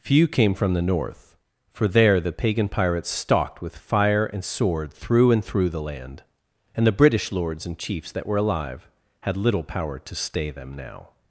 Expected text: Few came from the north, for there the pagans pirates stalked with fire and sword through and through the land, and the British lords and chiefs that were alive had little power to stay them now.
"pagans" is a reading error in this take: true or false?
true